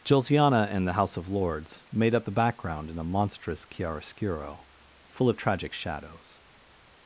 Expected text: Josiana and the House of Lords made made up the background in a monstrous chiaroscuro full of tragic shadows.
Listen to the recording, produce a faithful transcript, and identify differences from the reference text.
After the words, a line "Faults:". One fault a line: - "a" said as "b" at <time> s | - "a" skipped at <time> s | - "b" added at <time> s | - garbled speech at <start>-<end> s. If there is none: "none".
Josiana and the House of Lords made up the background in a monstrous chiaroscuro full of tragic shadows.
Faults:
- "made" skipped at 2.1 s